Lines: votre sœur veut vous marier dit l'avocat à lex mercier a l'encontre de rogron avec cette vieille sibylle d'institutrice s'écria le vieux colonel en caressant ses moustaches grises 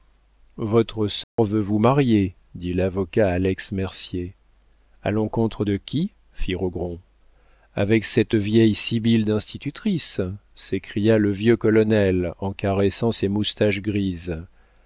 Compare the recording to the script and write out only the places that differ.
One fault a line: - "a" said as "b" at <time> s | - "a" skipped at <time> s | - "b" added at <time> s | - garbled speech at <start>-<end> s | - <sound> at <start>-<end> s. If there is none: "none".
- dropout at 1.2-1.4 s
- "qui fit" added at 5.8 s